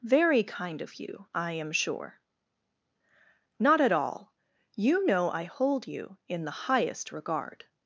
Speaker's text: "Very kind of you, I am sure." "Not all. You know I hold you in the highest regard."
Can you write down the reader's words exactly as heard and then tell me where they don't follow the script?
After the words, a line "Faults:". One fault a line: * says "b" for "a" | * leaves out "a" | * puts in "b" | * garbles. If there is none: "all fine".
"Very kind of you, I am sure." "Not at all. You know I hold you in the highest regard."
Faults:
* puts in "at"